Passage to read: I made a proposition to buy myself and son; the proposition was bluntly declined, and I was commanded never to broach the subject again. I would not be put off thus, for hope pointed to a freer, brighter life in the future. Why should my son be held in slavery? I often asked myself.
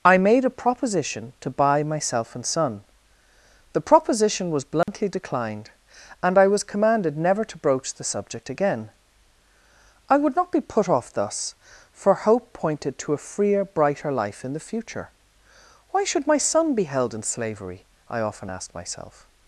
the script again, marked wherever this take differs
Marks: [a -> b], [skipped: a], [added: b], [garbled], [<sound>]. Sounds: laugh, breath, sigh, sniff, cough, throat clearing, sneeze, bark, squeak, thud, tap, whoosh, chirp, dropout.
I made a proposition to buy myself and son; the proposition was bluntly [dropout] declined, and I was commanded never to broach the subject again. I would not be put off thus, for hope pointed to a freer, brighter life in the future. Why should my son be held in slavery? I often asked myself.